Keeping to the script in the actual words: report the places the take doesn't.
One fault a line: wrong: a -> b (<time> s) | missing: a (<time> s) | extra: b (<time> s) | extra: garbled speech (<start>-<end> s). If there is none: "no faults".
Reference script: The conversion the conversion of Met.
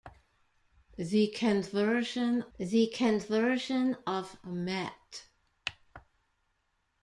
no faults